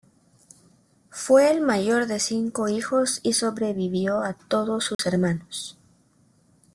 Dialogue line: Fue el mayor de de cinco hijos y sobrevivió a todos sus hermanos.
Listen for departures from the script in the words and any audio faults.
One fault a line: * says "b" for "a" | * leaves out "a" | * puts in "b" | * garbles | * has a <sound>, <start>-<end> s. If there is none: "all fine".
* leaves out "de"
* has a dropout, 4.9-5.0 s